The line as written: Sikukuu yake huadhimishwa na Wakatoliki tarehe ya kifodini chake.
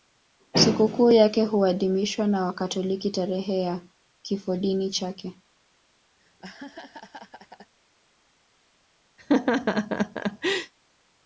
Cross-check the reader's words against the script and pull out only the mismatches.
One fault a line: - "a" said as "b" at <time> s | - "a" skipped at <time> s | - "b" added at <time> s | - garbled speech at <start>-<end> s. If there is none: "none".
none